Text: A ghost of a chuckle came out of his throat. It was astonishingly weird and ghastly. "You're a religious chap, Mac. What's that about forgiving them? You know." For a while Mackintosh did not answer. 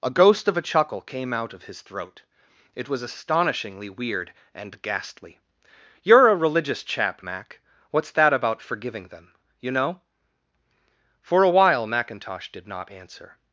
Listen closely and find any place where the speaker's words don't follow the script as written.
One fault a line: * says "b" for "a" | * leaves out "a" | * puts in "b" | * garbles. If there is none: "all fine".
all fine